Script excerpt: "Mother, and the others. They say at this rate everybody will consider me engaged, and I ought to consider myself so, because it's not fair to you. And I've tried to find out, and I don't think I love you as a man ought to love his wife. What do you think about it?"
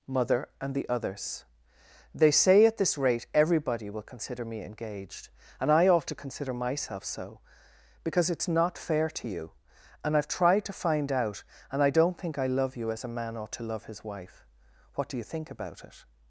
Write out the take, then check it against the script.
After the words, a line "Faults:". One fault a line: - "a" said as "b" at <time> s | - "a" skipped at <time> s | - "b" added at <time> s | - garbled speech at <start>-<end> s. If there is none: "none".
"Mother, and the others. They say at this rate everybody will consider me engaged, and I ought to consider myself so, because it's not fair to you. And I've tried to find out, and I don't think I love you as a man ought to love his wife. What do you think about it?"
Faults:
none